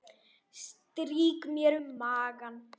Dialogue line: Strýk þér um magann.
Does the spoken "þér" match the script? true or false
false